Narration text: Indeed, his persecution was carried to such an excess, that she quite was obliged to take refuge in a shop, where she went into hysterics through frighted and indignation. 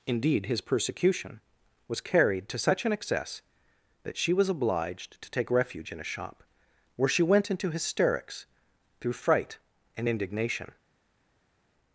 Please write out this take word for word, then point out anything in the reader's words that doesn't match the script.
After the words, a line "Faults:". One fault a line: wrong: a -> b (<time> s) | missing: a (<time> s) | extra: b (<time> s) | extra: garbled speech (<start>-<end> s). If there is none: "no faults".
Indeed, his persecution was carried to such an excess, that she was obliged to take refuge in a shop, where she went into hysterics through fright and indignation.
Faults:
missing: quite (4.3 s)
wrong: frighted -> fright (9.1 s)